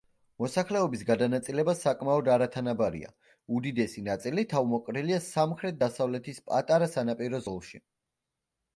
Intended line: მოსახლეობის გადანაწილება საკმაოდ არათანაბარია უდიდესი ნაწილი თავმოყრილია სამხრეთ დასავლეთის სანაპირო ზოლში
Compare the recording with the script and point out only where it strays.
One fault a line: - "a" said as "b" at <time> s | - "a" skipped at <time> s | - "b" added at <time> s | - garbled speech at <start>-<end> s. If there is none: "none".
- "პატარა" added at 6.5 s